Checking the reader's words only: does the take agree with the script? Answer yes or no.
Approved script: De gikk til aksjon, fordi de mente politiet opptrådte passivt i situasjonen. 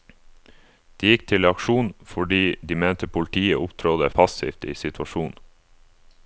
yes